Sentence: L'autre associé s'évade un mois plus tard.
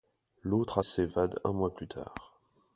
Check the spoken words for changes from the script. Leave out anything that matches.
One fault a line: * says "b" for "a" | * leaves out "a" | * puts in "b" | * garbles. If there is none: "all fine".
* leaves out "associé"